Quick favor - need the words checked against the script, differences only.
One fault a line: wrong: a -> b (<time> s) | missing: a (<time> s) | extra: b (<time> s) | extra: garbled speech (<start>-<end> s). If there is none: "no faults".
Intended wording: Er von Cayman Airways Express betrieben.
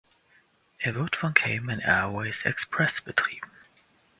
extra: wird (0.9 s)